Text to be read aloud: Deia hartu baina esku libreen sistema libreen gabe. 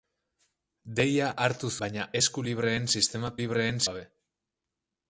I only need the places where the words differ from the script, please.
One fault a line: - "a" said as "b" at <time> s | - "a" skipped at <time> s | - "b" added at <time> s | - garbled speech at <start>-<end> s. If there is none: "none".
none